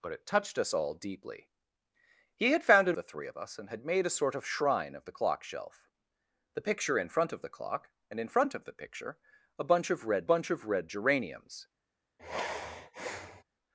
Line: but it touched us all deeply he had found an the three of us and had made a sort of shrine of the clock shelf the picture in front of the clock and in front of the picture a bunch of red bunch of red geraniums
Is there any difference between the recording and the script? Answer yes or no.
no